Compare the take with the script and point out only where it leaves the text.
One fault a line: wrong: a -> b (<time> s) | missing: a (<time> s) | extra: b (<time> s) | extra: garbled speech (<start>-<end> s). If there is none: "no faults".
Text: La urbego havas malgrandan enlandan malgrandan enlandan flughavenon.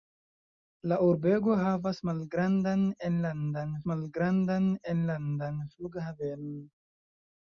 no faults